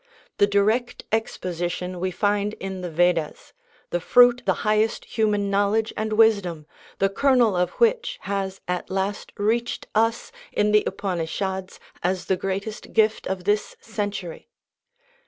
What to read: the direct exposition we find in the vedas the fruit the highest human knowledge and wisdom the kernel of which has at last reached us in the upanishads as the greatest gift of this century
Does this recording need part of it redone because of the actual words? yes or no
no